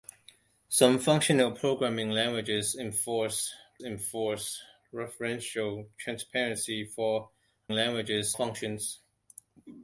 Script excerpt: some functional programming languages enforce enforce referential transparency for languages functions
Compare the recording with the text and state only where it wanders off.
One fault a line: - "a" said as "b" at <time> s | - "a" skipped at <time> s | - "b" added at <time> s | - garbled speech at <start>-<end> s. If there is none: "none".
none